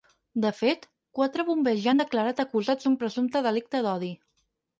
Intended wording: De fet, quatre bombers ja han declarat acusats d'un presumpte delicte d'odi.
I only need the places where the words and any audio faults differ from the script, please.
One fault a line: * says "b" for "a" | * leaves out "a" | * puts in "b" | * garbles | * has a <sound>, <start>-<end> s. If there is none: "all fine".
all fine